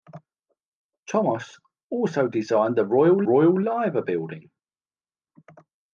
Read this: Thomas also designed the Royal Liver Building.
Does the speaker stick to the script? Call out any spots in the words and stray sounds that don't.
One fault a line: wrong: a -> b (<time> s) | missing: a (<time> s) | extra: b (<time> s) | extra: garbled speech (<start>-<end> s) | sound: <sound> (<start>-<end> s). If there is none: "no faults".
extra: Royal (3.2 s)